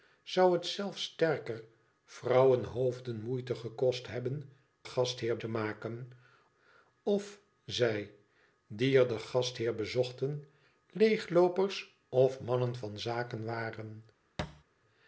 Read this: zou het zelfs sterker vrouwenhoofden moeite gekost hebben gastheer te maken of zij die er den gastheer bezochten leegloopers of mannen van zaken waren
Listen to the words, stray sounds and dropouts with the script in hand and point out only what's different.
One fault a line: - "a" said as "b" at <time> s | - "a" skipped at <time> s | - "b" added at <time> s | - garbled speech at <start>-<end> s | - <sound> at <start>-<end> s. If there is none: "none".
- thud at 14.4-14.6 s